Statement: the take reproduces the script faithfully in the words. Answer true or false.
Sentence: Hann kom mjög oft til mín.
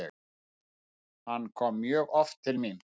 true